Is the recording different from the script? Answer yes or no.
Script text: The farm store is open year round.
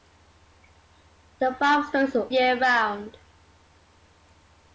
yes